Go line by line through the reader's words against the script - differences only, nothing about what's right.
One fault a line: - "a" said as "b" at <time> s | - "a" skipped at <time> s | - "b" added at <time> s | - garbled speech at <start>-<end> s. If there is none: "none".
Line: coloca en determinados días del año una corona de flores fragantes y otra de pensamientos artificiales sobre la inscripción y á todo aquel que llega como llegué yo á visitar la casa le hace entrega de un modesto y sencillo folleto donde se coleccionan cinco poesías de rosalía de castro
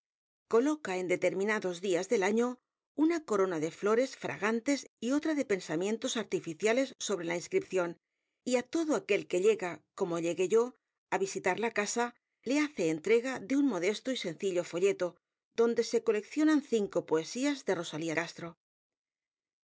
- "de" skipped at 18.1 s